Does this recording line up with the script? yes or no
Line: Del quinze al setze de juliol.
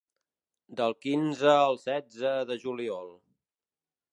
yes